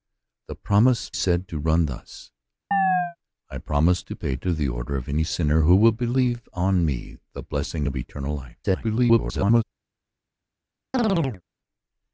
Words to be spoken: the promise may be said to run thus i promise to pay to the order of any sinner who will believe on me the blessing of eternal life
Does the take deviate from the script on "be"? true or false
true